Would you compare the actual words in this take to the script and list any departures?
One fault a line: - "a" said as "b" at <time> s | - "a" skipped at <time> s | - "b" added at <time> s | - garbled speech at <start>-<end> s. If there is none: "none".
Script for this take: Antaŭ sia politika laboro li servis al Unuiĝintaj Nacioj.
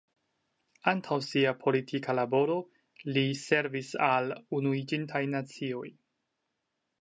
none